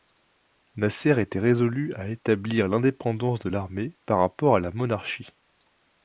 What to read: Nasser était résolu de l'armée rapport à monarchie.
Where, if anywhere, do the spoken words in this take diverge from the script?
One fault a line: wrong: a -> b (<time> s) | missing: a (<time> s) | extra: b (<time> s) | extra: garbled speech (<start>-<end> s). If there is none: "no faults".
extra: à établir l'indépendance (1.9 s)
extra: par (4.0 s)
extra: la (4.6 s)